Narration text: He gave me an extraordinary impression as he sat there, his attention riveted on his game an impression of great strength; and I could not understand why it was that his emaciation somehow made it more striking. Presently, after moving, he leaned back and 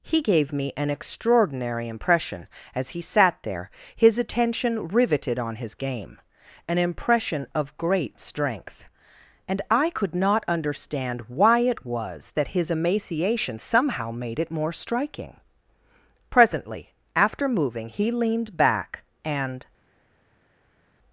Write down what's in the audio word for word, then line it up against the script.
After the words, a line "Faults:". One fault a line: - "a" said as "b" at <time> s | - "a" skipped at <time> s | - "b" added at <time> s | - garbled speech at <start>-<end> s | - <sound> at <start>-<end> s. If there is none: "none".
He gave me an extraordinary impression as he sat there, his attention riveted on his game an impression of great strength; and I could not understand why it was that his emaciation somehow made it more striking. Presently, after moving, he leaned back and
Faults:
none